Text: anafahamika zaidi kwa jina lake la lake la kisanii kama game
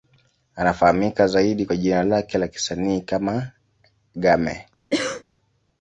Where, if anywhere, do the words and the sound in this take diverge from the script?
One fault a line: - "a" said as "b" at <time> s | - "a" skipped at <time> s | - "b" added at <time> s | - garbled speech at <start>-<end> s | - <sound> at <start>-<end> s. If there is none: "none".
- "lake la" skipped at 2.5 s
- cough at 4.9-5.2 s